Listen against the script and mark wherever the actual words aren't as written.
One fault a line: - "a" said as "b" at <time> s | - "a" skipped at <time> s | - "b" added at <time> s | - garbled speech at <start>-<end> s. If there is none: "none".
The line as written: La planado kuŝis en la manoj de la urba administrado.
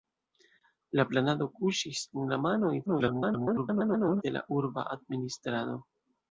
- garbled speech at 2.9-4.2 s